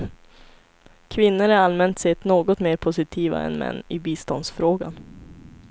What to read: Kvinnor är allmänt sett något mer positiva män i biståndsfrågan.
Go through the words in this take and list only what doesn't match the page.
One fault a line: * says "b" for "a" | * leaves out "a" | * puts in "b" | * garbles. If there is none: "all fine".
* puts in "än"